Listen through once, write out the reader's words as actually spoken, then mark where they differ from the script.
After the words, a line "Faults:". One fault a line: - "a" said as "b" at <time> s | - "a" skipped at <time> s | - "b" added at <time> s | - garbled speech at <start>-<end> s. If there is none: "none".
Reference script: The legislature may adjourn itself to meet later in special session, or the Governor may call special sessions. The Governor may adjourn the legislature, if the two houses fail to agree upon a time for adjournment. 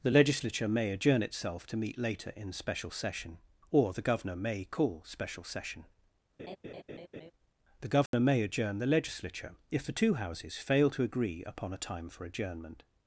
The legislature may adjourn itself to meet later in special session, or the Governor may call special session. The Governor may adjourn the legislature, if the two houses fail to agree upon a time for adjournment.
Faults:
- "sessions" said as "session" at 5.4 s